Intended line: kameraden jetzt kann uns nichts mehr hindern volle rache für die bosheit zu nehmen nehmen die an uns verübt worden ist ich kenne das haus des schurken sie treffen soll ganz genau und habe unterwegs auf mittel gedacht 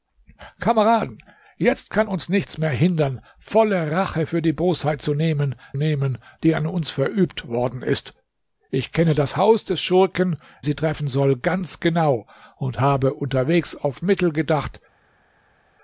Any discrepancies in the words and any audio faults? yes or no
no